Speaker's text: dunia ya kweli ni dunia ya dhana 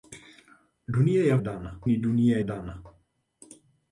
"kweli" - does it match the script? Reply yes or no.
no